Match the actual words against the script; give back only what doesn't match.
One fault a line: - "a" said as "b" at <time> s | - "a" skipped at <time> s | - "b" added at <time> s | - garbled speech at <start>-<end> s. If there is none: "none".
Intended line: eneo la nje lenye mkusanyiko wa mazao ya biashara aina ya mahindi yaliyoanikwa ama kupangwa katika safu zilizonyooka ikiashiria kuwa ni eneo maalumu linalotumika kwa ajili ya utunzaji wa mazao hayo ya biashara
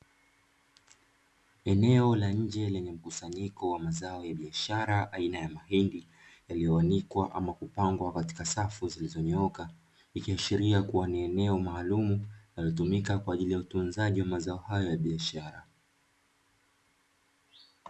none